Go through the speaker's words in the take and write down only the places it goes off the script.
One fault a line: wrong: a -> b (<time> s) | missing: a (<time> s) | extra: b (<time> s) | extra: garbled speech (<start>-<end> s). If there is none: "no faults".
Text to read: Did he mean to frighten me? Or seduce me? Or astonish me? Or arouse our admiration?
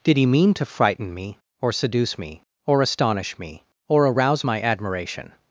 wrong: our -> my (4.4 s)